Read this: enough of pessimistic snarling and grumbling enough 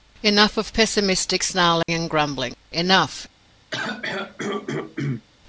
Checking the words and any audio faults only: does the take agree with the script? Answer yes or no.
no